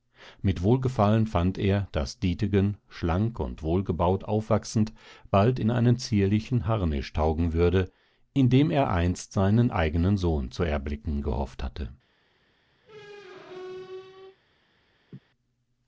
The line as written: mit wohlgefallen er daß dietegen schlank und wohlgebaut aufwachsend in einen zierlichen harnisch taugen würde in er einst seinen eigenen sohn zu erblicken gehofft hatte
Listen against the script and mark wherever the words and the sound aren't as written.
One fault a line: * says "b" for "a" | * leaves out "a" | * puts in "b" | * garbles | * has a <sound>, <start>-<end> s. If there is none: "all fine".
* puts in "fand"
* puts in "bald"
* puts in "dem"
* has a squeak, 12.8-14.4 s
* has a laugh, 15.1-15.2 s